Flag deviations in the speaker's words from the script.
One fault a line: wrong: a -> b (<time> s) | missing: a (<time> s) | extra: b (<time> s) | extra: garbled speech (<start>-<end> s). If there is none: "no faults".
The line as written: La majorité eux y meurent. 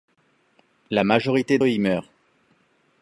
no faults